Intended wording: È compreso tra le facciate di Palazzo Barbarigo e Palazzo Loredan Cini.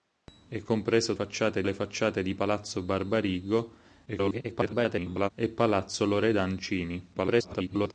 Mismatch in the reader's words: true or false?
true